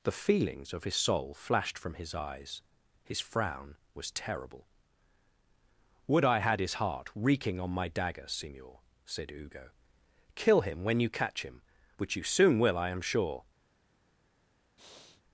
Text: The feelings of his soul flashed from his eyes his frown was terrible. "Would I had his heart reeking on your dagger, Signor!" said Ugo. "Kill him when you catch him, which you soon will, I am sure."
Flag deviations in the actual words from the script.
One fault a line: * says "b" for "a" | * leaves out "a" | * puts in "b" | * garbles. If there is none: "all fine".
* says "my" for "your"